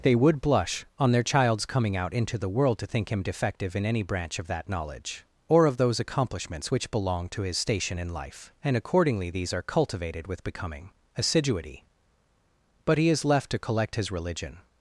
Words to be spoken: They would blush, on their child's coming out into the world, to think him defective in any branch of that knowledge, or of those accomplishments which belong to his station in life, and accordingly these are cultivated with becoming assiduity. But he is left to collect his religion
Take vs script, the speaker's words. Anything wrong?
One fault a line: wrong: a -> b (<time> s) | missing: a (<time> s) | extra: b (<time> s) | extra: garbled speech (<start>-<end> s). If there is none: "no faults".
no faults